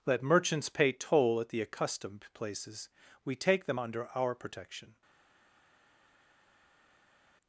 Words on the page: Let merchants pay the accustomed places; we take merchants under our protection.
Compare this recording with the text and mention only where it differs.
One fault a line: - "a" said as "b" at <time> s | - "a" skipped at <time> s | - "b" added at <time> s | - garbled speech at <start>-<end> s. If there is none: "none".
- "toll at" added at 0.9 s
- "merchants" said as "them" at 3.6 s